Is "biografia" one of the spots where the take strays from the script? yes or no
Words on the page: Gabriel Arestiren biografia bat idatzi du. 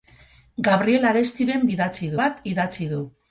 yes